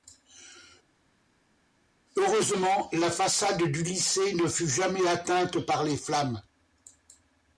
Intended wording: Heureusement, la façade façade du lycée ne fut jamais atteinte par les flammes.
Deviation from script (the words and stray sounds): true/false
true